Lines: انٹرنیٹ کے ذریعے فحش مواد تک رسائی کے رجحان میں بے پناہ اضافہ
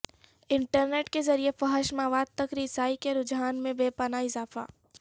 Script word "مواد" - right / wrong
right